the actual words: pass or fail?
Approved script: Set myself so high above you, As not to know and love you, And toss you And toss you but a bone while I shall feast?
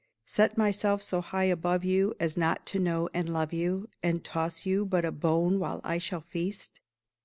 fail